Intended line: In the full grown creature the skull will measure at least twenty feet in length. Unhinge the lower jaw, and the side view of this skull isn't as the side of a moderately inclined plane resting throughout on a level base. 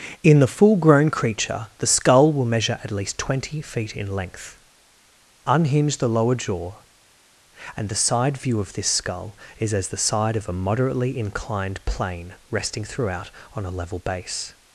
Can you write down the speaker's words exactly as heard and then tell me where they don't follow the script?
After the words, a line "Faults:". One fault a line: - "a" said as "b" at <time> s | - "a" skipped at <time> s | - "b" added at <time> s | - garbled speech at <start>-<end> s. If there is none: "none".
In the full grown creature the skull will measure at least twenty feet in length. Unhinge the lower jaw, and the side view of this skull is as the side of a moderately inclined plane resting throughout on a level base.
Faults:
- "isn't" said as "is" at 9.6 s